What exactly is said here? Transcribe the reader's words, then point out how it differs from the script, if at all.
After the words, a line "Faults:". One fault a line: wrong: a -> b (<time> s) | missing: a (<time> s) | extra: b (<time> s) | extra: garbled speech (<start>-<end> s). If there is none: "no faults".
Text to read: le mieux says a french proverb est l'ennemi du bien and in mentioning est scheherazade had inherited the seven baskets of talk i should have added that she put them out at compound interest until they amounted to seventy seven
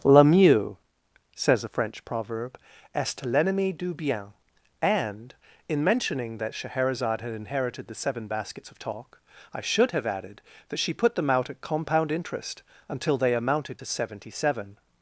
le mieux says a french proverb est l'ennemi du bien and in mentioning that scheherazade had inherited the seven baskets of talk i should have added that she put them out at compound interest until they amounted to seventy seven
Faults:
wrong: est -> that (6.4 s)